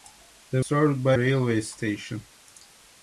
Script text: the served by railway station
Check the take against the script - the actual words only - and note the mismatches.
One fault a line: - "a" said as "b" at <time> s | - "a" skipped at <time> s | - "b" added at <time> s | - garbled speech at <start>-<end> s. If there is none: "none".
none